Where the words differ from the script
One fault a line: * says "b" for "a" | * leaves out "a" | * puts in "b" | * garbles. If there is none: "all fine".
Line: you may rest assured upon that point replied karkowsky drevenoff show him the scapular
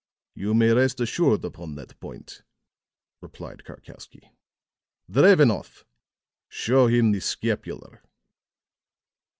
all fine